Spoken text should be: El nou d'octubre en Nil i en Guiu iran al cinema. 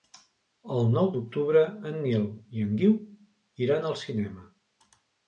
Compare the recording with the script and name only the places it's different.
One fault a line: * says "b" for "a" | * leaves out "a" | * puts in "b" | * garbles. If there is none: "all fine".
all fine